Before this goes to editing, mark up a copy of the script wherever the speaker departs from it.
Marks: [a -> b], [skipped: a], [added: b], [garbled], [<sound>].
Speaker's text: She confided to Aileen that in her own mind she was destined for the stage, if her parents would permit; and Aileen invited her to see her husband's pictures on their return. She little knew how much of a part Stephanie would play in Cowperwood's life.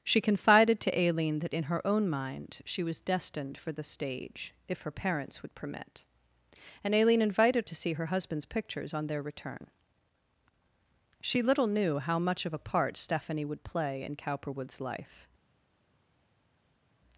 She confided to Aileen that in her own mind she was destined for the stage, if her parents would permit; and Aileen invited [skipped: her] to see her husband's pictures on their return. She little knew how much of a part Stephanie would play in Cowperwood's life.